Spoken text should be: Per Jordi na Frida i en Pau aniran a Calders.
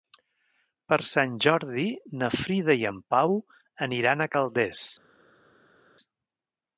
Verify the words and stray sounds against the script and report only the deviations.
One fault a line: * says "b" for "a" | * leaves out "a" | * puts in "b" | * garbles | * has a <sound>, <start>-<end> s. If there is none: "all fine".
* puts in "Sant"